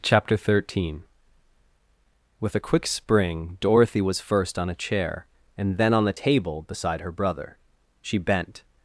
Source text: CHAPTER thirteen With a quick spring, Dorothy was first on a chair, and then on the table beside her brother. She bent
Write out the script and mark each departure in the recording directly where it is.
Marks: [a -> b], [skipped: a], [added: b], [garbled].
CHAPTER thirteen With a quick spring, Dorothy was first on a chair, and then on the table beside her brother. She bent